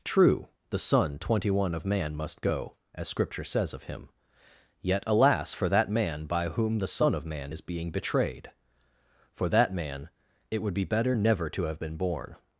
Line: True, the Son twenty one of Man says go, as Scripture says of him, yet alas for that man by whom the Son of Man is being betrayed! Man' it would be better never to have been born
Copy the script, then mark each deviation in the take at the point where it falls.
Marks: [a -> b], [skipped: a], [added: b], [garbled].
True, the Son twenty one of Man [says -> must] go, as Scripture says of him, yet alas for that man by whom the Son of Man is being betrayed! [added: For that] Man' it would be better never to have been born